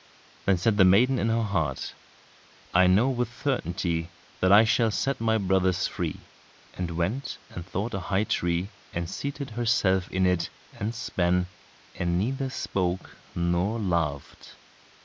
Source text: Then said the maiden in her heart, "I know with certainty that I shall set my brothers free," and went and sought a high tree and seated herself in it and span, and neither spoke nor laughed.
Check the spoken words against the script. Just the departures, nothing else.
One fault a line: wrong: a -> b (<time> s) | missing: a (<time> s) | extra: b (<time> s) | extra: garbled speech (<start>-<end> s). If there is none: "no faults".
no faults